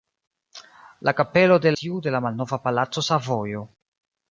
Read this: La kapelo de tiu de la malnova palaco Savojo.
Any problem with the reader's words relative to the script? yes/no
no